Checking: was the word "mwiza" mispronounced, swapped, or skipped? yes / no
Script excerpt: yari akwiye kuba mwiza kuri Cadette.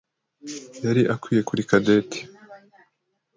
yes